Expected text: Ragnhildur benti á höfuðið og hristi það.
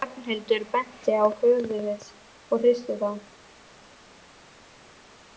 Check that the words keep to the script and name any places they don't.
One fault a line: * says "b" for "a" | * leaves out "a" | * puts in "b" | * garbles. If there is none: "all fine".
all fine